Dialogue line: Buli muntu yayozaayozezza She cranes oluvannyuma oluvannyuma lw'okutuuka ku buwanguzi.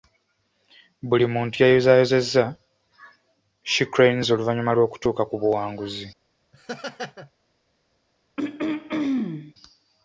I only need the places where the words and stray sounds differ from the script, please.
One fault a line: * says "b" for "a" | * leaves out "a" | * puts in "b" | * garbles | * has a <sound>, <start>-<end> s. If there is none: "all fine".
* leaves out "oluvannyuma"
* has a laugh, 6.5-7.3 s
* has a throat clearing, 8.4-9.5 s